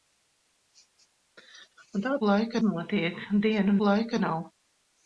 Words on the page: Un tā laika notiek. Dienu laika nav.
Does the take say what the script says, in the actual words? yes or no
yes